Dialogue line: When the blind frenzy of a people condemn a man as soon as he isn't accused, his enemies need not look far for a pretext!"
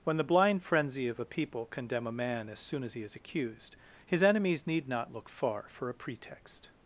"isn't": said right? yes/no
no